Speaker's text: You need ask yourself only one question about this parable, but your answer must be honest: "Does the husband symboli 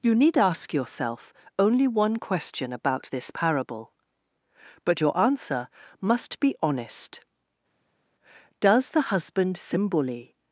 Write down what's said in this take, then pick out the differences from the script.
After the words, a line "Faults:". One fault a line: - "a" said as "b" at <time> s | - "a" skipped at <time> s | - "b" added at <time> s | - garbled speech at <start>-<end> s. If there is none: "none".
You need ask yourself only one question about this parable, but your answer must be honest: "Does the husband symboli
Faults:
none